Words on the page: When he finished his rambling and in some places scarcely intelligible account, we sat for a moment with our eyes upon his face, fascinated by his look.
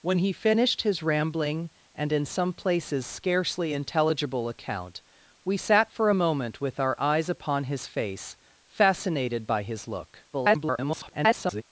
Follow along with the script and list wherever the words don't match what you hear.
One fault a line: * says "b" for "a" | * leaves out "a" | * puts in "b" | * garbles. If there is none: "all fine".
* garbles